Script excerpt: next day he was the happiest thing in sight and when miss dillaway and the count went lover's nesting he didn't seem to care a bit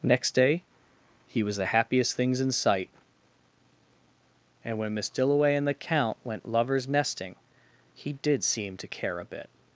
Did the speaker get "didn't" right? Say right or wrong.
wrong